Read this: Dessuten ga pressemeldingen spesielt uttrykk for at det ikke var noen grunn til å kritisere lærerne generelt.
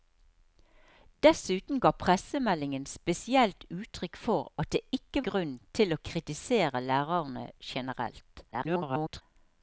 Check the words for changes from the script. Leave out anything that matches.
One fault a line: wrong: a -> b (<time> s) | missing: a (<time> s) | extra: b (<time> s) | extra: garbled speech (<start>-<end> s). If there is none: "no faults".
missing: var noen (5.3 s)
extra: garbled speech (8.5-9.2 s)